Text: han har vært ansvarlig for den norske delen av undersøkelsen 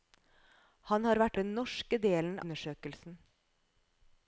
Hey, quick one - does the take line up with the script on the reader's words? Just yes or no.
no